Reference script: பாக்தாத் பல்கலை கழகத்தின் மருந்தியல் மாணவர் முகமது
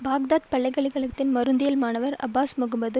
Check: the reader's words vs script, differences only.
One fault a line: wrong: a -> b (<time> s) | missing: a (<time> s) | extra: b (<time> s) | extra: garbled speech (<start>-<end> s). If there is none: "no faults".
extra: அப்பாஸ் (2.2 s)